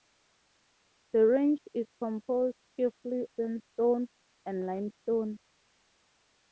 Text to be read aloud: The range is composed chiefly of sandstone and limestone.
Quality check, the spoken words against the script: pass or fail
fail